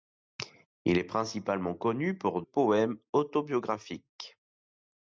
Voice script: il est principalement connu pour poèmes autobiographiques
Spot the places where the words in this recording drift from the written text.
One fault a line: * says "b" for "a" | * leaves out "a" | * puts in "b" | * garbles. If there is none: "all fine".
all fine